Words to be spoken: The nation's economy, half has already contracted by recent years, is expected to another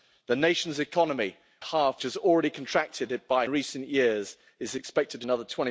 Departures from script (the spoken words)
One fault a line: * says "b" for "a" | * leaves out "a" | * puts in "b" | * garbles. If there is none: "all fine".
all fine